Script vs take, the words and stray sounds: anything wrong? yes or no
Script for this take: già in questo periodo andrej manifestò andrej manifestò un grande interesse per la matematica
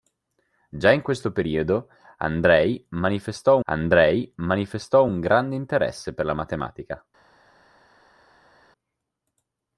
no